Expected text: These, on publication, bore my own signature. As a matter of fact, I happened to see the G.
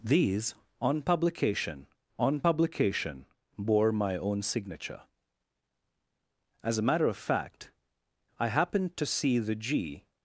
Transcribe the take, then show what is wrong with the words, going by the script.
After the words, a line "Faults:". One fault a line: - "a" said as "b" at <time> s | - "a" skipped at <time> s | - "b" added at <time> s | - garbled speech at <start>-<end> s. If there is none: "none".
These, on publication on publication, bore my own signature. As a matter of fact, I happened to see the G.
Faults:
- "on publication" added at 2.2 s